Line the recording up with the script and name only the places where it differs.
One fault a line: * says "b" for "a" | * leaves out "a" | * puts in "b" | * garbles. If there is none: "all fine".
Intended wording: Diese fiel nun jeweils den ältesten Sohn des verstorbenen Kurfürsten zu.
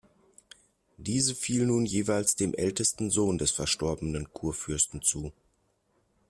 * says "dem" for "den"